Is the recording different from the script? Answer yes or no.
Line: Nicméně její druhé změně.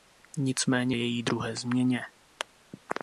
no